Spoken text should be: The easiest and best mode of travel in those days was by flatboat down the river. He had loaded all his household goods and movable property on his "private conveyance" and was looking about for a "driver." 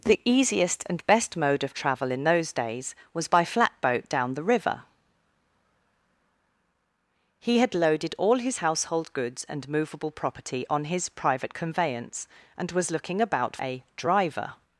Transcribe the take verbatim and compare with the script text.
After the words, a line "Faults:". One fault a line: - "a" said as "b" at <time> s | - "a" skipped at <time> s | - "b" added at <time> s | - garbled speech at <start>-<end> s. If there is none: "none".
The easiest and best mode of travel in those days was by flatboat down the river. He had loaded all his household goods and movable property on his "private conveyance" and was looking about a "driver."
Faults:
- "for" skipped at 13.6 s